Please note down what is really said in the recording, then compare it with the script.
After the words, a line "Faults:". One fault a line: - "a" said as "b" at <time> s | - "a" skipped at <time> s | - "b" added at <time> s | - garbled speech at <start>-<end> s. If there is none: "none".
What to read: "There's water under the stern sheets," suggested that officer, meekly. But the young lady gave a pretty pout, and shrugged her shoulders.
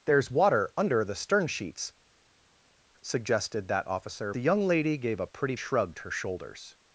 "There's water under the stern sheets," suggested that officer, the young lady gave a pretty shrugged her shoulders.
Faults:
- "meekly But" skipped at 4.3 s
- "pout and" skipped at 5.5 s